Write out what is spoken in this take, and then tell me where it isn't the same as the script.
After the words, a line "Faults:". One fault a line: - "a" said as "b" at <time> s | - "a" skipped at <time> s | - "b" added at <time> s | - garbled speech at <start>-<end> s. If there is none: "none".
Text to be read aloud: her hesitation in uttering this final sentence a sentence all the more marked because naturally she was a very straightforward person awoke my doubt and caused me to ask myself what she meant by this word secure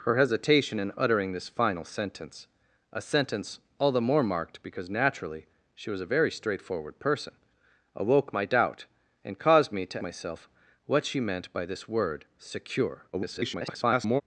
her hesitation in uttering this final sentence a sentence all the more marked because naturally she was a very straightforward person awoke my doubt and caused me to myself what she meant by this word secure [garbled]
Faults:
- "ask" skipped at 10.0 s
- garbled speech at 13.1-14.2 s